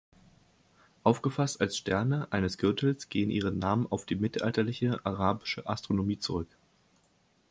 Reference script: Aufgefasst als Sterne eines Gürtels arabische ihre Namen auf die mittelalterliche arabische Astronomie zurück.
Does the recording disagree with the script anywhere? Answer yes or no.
yes